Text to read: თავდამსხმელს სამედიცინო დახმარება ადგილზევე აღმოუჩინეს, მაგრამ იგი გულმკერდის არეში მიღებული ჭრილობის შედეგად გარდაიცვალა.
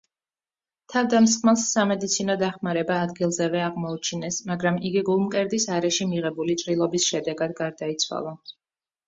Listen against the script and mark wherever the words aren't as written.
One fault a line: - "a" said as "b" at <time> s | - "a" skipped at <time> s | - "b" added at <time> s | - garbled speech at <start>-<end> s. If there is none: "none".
none